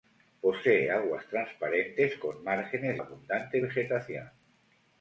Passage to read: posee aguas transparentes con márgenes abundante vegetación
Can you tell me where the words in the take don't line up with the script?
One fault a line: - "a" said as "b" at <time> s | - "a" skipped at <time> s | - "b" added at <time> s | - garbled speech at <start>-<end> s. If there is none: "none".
none